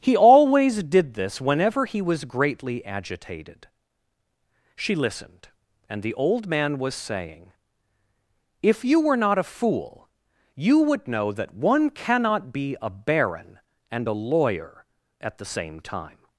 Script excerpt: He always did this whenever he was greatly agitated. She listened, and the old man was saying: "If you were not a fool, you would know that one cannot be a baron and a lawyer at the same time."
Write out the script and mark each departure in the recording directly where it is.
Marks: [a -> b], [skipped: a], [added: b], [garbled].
He always did this whenever he was greatly agitated. She listened, and the old man was saying: "If you were not a fool, you would know that one cannot be a baron and a lawyer at the same time."